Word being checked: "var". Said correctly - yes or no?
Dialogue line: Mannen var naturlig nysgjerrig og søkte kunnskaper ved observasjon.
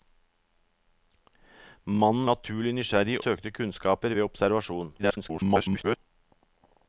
no